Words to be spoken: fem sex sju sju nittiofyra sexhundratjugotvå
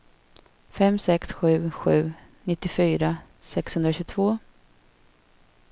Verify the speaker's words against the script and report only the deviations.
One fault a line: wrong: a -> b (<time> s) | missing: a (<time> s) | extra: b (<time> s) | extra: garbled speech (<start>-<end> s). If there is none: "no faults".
no faults